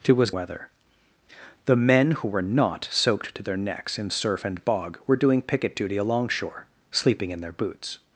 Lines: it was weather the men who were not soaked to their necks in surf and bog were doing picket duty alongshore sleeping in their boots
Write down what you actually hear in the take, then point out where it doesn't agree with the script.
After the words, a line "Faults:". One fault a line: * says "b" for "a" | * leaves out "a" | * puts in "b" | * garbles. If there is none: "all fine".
it was weather the men who were not soaked to their necks in surf and bog were doing picket duty alongshore sleeping in their boots
Faults:
all fine